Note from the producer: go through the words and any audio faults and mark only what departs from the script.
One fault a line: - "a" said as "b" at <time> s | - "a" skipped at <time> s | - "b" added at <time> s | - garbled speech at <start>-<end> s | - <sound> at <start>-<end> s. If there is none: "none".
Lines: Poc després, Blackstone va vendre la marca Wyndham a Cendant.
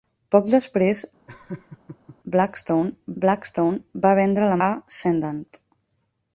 - laugh at 1.3-2.2 s
- "Blackstone" added at 3.2 s
- "marca Wyndham" skipped at 4.6 s